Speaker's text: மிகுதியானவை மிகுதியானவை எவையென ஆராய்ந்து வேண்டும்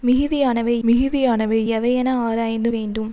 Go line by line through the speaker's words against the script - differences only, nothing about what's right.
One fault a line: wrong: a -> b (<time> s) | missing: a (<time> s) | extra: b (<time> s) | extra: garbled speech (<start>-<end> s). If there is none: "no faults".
no faults